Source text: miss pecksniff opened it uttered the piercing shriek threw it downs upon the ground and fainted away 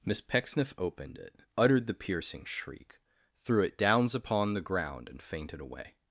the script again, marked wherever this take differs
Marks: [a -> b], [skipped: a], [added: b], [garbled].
miss pecksniff opened it uttered the piercing shriek threw it downs upon the ground and fainted away